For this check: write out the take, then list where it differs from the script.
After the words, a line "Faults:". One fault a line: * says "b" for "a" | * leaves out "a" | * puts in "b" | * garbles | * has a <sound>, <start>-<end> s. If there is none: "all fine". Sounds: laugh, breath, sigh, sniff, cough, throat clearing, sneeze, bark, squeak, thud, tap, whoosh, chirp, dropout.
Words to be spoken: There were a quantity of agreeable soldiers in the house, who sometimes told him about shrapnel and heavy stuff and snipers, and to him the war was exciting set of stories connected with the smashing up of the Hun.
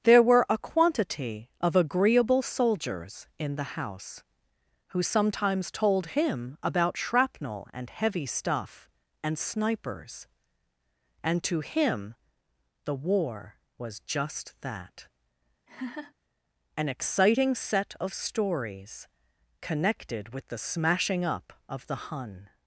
There were a quantity of agreeable soldiers in the house, who sometimes told him about shrapnel and heavy stuff and snipers, and to him the war was just that; an exciting set of stories connected with the smashing up of the Hun.
Faults:
* puts in "just that an"
* has a laugh, 15.7-16.1 s